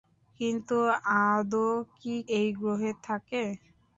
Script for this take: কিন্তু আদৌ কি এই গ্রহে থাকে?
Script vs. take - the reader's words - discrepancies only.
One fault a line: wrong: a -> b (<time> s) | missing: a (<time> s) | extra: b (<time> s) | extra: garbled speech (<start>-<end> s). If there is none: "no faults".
no faults